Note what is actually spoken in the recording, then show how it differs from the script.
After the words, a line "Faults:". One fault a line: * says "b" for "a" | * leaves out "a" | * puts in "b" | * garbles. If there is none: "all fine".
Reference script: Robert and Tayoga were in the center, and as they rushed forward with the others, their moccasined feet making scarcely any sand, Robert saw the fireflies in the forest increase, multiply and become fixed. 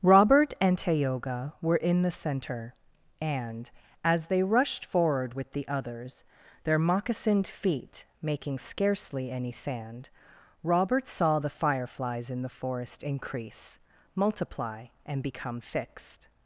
Robert and Tayoga were in the center, and as they rushed forward with the others, their moccasined feet making scarcely any sand, Robert saw the fireflies in the forest increase, multiply and become fixed.
Faults:
all fine